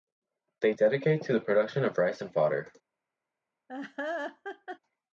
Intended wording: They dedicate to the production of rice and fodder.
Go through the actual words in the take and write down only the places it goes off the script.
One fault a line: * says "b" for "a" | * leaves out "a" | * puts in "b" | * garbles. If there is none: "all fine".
all fine